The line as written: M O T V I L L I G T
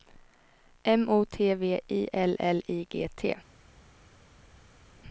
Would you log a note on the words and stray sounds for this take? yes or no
no